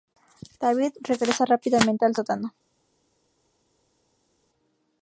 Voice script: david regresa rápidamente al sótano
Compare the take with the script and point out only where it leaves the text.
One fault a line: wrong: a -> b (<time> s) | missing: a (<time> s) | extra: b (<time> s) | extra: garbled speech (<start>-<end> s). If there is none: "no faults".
no faults